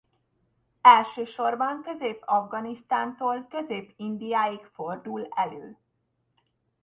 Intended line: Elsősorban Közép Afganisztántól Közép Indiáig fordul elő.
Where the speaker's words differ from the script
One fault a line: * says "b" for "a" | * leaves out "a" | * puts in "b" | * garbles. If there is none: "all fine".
all fine